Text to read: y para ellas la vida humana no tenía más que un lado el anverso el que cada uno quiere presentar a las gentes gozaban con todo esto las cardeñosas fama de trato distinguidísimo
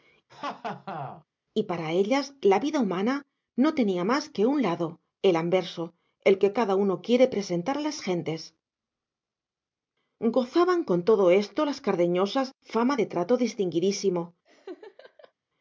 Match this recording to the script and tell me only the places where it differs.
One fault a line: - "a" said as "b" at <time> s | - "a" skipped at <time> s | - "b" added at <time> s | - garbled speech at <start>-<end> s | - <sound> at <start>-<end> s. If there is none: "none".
- laugh at 0.3-1.2 s
- laugh at 14.5-15.3 s